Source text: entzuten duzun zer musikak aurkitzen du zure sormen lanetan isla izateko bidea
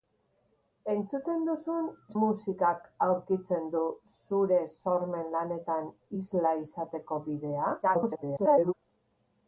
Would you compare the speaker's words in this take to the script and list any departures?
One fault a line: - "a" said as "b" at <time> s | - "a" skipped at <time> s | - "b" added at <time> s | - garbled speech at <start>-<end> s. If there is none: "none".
- "zer" skipped at 1.9 s
- garbled speech at 7.8-8.7 s